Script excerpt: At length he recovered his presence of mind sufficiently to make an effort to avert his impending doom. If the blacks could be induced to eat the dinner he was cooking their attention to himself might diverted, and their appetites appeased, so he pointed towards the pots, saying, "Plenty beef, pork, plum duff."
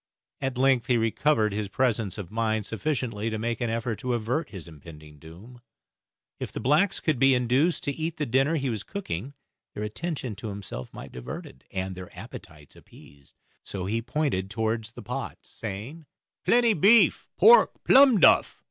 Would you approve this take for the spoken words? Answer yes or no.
yes